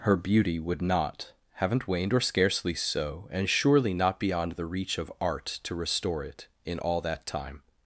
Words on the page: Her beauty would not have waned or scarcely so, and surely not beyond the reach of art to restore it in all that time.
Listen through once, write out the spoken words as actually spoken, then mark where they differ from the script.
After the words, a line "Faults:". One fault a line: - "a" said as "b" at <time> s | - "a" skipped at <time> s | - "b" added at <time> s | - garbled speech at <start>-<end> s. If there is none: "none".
Her beauty would not haven't waned or scarcely so, and surely not beyond the reach of art to restore it in all that time.
Faults:
- "have" said as "haven't" at 1.6 s